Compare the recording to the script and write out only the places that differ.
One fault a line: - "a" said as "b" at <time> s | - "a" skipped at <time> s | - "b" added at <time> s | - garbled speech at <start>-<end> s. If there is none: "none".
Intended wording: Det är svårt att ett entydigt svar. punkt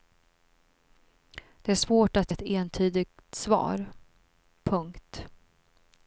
none